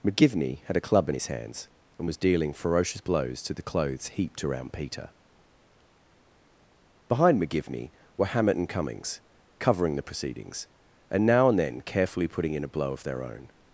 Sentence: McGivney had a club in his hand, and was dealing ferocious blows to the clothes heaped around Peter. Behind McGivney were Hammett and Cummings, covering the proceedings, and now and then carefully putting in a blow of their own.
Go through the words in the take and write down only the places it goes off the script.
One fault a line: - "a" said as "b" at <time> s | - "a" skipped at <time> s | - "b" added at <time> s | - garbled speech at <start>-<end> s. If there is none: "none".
- "hand" said as "hands" at 1.3 s